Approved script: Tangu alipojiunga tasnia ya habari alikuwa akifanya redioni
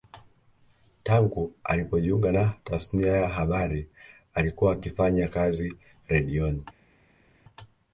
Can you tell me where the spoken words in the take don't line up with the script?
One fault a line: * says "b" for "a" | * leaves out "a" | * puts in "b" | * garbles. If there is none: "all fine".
* puts in "na"
* puts in "kazi"